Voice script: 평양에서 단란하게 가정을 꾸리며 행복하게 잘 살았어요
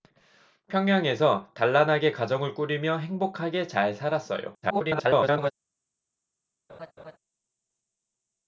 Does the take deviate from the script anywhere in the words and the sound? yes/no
yes